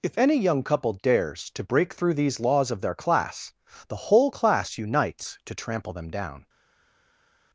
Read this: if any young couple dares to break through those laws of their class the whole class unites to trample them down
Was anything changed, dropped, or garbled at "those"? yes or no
yes